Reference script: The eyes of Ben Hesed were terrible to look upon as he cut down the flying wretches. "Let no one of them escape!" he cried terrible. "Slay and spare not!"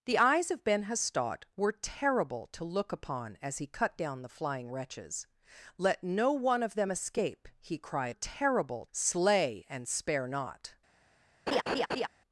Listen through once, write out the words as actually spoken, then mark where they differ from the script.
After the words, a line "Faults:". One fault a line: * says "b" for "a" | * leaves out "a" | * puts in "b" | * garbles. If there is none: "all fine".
The eyes of Ben Hesed were terrible to look upon as he cut down the flying wretches. "Let no one of them escape!" he cried terrible. "Slay and spare not!"
Faults:
all fine